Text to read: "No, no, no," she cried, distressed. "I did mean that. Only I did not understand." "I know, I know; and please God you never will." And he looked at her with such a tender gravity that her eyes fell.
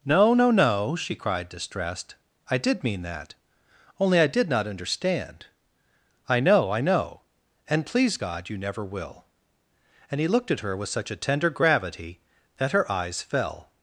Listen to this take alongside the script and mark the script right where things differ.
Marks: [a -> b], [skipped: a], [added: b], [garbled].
"No, no, no," she cried, distressed. "I did mean that. Only I did not understand." "I know, I know; and please God you never will." And he looked at her with such a tender gravity that her eyes fell.